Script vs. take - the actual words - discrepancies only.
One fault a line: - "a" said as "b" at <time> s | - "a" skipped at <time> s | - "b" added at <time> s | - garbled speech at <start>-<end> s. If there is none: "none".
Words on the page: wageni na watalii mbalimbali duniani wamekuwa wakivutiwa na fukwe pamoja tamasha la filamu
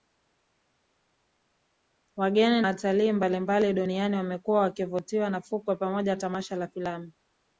- "na" skipped at 2.6 s